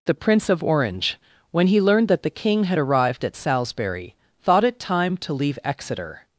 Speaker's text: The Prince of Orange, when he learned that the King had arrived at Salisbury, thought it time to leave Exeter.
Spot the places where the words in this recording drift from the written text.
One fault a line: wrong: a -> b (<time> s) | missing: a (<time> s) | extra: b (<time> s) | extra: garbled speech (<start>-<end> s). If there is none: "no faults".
no faults